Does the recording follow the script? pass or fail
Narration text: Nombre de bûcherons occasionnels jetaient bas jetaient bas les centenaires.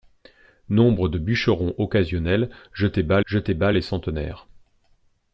pass